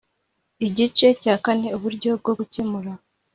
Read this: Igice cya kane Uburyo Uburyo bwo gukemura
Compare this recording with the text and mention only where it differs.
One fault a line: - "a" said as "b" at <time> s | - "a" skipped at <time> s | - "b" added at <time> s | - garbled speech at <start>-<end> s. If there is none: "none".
- "Uburyo" skipped at 2.1 s